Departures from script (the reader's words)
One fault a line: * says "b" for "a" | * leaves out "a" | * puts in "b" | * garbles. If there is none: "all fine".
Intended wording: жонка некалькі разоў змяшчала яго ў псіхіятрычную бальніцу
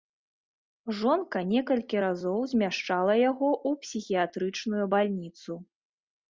all fine